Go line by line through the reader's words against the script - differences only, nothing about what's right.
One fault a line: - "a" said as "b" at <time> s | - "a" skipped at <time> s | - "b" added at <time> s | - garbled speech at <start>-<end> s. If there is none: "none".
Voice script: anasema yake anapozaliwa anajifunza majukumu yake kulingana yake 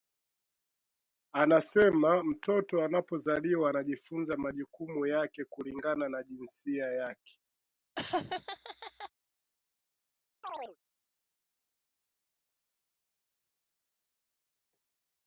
- "yake" said as "mtoto" at 2.2 s
- "na jinsia" added at 6.1 s